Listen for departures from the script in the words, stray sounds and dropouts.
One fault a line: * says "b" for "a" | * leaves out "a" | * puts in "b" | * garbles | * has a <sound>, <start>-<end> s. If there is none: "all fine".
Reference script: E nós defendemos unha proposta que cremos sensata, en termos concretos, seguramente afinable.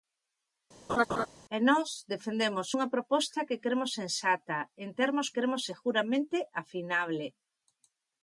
* has a laugh, 0.9-1.3 s
* says "cremos" for "concretos"